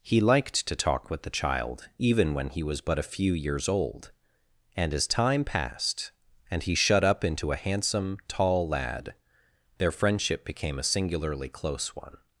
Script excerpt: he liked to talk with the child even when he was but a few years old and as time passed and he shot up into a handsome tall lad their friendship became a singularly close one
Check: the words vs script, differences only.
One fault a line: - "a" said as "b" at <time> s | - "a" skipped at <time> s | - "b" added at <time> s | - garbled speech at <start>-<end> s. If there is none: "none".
- "shot" said as "shut" at 6.8 s